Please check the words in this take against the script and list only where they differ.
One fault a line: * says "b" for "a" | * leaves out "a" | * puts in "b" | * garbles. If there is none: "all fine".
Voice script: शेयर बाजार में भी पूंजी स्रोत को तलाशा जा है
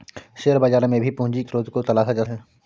all fine